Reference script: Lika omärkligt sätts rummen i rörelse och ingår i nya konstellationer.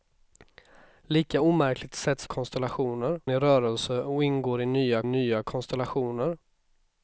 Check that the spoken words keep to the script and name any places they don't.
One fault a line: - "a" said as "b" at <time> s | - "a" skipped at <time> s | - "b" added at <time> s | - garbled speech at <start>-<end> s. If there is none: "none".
- "rummen" said as "konstellationer" at 2.3 s
- "nya" added at 5.0 s